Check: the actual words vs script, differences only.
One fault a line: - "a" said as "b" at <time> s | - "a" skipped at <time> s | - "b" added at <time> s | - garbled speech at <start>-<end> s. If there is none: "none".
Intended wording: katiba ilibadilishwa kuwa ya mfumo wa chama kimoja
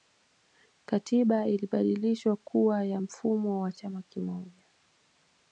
none